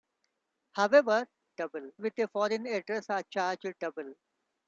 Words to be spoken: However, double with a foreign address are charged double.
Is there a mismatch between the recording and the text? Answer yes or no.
no